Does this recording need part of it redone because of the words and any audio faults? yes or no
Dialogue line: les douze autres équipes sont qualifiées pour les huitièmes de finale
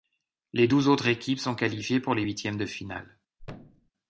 yes